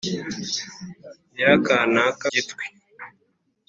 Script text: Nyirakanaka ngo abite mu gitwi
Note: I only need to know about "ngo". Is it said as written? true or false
false